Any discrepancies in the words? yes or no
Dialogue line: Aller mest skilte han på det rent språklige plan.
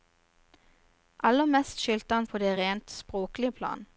no